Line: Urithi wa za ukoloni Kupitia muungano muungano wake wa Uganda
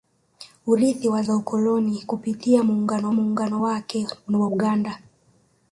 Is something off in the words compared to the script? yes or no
no